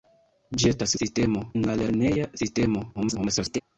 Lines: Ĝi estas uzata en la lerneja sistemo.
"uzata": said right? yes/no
no